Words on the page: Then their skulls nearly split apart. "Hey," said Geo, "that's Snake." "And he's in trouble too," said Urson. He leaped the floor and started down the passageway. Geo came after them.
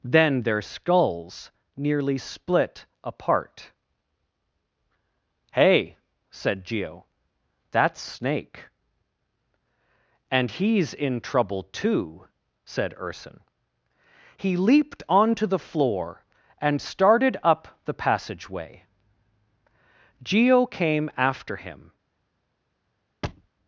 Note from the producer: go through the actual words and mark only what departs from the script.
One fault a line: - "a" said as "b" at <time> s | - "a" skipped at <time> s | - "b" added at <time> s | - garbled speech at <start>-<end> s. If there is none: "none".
- "onto" added at 15.1 s
- "down" said as "up" at 17.4 s
- "them" said as "him" at 21.6 s